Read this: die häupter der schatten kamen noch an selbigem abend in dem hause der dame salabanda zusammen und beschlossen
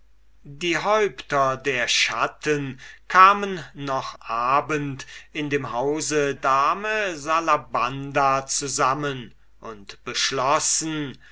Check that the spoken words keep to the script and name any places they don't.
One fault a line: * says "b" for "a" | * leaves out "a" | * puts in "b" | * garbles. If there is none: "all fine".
* leaves out "an selbigem"
* leaves out "der"